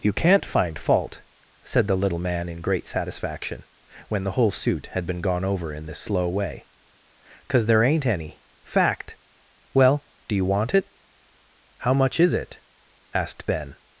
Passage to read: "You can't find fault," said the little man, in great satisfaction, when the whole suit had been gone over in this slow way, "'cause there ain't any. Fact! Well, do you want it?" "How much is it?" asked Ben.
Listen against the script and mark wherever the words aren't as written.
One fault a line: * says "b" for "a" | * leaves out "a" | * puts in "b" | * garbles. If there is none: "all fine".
all fine